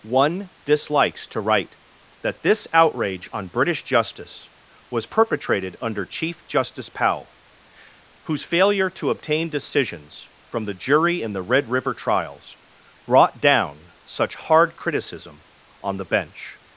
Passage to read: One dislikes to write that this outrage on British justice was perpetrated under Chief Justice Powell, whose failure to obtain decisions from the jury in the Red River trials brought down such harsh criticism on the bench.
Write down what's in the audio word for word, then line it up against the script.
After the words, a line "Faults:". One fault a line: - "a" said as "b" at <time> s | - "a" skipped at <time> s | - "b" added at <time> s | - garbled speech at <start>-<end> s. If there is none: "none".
One dislikes to write that this outrage on British justice was perpetrated under Chief Justice Powell, whose failure to obtain decisions from the jury in the Red River trials brought down such hard criticism on the bench.
Faults:
- "harsh" said as "hard" at 14.4 s